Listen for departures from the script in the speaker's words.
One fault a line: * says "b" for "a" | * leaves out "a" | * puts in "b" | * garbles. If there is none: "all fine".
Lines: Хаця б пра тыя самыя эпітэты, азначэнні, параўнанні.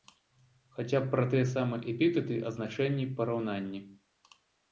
all fine